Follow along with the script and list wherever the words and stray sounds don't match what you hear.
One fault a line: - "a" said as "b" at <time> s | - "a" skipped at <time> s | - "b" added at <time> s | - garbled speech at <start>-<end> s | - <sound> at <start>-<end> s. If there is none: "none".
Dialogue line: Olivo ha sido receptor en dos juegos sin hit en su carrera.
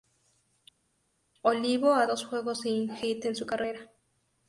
- "sido receptor en" skipped at 2.1 s